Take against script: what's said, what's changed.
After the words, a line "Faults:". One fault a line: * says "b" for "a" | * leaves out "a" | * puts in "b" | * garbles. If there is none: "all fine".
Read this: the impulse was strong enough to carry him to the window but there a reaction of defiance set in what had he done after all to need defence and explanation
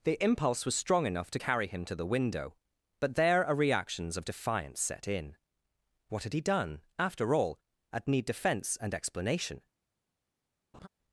the impulse was strong enough to carry him to the window but there a reactions of defiance set in what had he done after all at need defence and explanation
Faults:
* says "reactions" for "reaction"
* says "at" for "to"